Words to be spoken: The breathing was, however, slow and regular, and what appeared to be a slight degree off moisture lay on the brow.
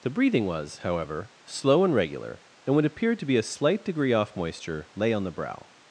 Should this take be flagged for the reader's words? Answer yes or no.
no